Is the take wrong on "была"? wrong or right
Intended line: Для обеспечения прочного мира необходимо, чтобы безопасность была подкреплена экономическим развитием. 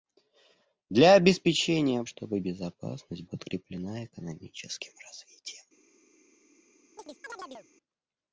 wrong